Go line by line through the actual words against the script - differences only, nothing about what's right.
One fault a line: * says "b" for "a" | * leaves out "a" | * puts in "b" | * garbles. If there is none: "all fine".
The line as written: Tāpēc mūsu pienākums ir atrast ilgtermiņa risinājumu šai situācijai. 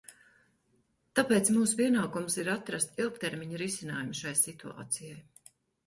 all fine